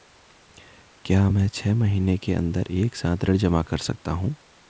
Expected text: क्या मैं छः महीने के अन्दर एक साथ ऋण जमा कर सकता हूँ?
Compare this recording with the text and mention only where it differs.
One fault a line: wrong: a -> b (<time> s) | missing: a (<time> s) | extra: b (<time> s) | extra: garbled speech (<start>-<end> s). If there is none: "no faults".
no faults